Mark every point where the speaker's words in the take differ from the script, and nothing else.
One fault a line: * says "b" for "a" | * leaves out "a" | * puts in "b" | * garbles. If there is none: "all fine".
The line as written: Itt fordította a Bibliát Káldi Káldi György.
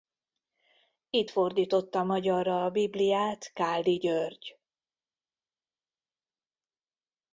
* puts in "magyarra"
* leaves out "Káldi"